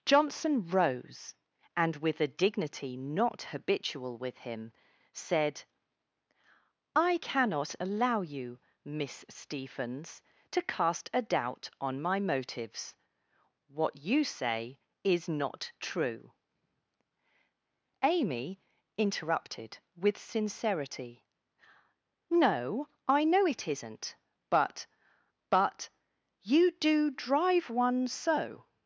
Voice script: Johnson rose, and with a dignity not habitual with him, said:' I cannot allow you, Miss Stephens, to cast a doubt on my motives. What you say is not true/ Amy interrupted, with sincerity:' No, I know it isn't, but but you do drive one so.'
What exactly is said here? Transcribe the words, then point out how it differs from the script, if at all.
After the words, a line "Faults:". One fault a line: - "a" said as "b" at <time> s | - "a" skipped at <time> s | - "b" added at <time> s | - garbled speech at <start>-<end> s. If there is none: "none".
Johnson rose, and with a dignity not habitual with him, said:' I cannot allow you, Miss Stephens, to cast a doubt on my motives. What you say is not true/ Amy interrupted, with sincerity:' No, I know it isn't, but but you do drive one so.'
Faults:
none